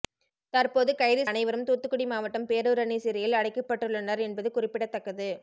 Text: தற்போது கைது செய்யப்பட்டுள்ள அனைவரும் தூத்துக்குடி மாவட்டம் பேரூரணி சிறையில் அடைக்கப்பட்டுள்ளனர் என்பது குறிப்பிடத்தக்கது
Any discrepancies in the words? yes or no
yes